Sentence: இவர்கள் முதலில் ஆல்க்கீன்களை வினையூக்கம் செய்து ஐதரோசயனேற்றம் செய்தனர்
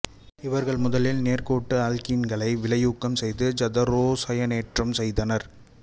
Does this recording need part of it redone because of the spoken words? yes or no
yes